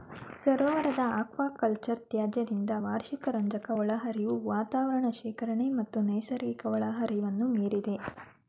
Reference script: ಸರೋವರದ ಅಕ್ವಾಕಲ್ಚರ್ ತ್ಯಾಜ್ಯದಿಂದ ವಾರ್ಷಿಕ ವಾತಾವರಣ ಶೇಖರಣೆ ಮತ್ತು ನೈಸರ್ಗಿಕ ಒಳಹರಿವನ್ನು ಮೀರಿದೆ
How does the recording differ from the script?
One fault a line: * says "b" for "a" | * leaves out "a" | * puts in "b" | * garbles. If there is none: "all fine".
* puts in "ರಂಜಕ ಒಳಹರಿವು"